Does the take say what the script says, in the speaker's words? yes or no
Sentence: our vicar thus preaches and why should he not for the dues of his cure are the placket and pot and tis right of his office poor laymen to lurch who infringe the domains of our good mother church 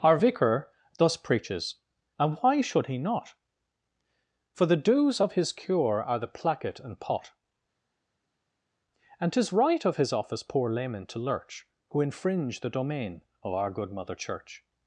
no